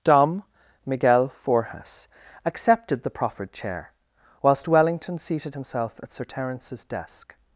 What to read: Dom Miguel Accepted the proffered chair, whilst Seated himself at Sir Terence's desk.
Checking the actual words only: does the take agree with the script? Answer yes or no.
no